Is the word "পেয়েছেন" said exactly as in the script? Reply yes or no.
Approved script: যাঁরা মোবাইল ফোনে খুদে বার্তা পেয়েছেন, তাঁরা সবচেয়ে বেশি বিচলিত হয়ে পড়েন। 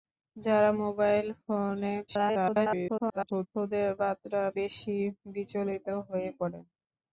no